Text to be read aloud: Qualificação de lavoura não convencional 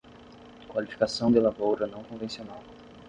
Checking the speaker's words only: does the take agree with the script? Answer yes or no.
yes